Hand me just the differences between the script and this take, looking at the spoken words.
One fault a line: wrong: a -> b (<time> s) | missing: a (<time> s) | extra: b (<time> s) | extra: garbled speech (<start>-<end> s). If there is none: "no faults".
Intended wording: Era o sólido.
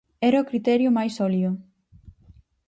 extra: criterio máis (0.5 s)